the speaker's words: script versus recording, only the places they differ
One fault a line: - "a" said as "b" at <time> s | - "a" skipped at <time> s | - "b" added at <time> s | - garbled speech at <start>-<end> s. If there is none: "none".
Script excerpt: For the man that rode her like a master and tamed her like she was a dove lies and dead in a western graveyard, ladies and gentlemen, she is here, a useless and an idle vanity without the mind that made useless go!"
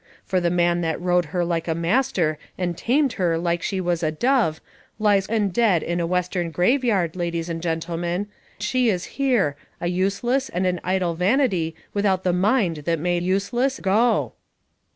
none